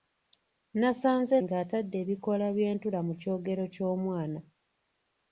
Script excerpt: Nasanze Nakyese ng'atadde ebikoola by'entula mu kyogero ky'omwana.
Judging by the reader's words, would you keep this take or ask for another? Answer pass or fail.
fail